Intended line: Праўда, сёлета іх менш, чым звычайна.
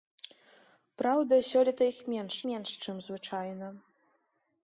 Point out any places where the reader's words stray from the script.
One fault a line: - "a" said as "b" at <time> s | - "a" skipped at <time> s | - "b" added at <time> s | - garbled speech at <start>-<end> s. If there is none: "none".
- "менш" added at 2.5 s